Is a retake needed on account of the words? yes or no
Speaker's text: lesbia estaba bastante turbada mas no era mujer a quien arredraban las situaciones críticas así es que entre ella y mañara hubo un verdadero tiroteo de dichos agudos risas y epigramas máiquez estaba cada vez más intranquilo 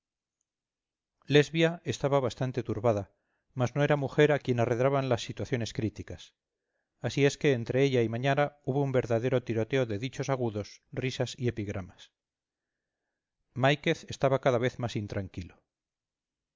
no